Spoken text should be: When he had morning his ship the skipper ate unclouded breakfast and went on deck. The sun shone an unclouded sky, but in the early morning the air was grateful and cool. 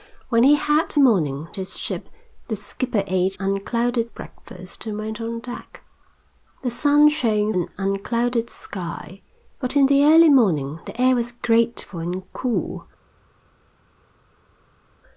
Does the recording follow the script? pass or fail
pass